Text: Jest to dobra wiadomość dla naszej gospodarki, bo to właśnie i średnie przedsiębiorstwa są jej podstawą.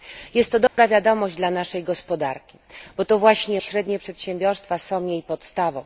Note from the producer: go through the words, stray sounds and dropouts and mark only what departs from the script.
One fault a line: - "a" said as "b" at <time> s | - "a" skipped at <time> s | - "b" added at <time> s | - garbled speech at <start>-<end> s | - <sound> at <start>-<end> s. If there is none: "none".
- dropout at 0.7-0.8 s